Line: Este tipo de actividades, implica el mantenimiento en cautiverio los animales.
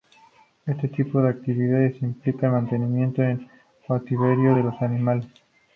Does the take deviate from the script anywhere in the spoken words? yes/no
yes